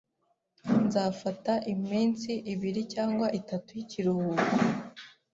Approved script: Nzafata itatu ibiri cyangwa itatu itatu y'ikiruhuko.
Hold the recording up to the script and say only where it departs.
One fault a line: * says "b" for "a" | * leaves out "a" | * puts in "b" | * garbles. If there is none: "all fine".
* says "iminsi" for "itatu"
* leaves out "itatu"